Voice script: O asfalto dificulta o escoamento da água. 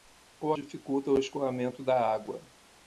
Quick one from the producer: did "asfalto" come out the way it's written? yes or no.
no